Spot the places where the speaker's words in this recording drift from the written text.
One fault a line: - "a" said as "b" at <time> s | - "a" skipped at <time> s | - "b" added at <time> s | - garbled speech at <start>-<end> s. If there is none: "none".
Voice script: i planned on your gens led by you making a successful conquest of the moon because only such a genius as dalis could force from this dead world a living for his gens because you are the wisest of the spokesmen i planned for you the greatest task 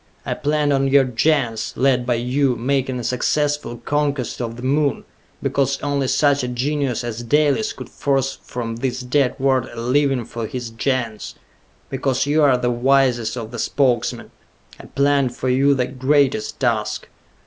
none